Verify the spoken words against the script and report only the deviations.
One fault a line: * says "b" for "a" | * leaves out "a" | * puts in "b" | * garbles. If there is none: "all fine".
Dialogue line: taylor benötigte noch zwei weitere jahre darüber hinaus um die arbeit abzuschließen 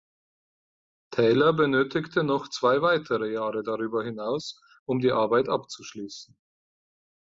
all fine